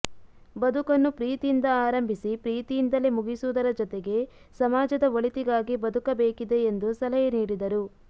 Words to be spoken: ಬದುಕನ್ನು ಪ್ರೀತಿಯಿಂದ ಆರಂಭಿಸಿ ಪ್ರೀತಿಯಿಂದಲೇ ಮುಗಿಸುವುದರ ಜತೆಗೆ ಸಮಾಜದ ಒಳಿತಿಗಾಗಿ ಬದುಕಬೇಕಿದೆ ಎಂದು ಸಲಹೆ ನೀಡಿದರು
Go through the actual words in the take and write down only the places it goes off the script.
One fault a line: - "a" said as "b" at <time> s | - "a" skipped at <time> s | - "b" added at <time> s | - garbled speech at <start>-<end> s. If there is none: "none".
none